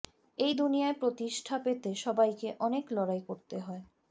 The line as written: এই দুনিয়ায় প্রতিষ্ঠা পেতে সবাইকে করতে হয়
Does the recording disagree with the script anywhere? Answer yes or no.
yes